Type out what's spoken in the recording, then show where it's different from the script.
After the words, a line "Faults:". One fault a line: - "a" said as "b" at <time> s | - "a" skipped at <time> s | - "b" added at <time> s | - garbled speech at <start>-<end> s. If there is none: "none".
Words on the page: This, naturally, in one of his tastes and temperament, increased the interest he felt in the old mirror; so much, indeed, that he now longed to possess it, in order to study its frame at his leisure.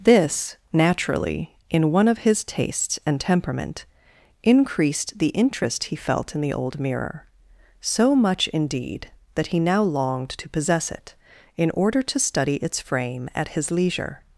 This, naturally, in one of his tastes and temperament, increased the interest he felt in the old mirror; so much, indeed, that he now longed to possess it, in order to study its frame at his leisure.
Faults:
none